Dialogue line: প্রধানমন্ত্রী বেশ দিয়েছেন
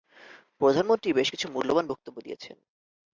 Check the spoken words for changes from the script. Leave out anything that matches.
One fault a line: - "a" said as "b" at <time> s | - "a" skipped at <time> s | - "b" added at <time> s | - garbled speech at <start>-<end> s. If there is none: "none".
- "কিছু মূল্যবান বক্তব্য" added at 1.3 s